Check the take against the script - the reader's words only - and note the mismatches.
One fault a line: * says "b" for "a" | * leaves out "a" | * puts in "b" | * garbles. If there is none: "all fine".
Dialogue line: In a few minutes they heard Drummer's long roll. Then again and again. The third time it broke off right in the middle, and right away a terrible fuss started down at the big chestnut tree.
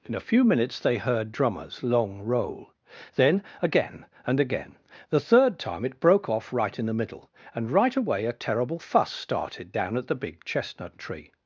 all fine